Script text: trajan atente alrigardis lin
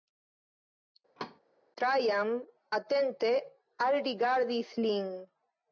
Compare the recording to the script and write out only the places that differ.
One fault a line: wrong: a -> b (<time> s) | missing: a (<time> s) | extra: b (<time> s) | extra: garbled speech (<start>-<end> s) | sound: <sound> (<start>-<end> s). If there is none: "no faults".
sound: thud (1.2-1.4 s)